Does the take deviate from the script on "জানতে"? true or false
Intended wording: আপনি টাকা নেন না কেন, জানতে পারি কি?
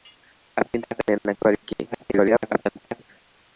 true